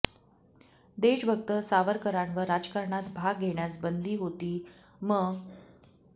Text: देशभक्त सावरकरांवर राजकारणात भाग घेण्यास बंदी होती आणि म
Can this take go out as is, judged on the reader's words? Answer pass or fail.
fail